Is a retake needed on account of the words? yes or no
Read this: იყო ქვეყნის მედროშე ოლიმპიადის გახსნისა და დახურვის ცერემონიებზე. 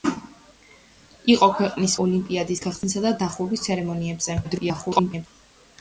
yes